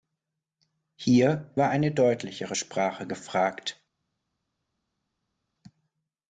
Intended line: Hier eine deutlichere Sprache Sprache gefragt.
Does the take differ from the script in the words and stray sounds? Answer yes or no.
yes